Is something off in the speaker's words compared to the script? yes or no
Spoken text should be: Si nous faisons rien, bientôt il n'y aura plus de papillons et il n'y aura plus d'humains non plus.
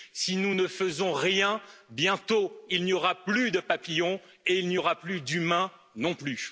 yes